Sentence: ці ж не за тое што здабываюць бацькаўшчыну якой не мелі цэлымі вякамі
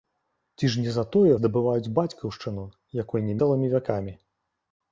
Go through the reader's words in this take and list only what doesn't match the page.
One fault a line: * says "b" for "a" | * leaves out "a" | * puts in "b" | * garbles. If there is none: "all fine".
* leaves out "што"
* leaves out "мелі"